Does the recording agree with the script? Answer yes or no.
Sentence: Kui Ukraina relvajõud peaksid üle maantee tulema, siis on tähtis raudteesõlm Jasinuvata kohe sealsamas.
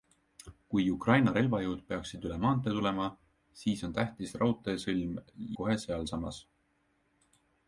no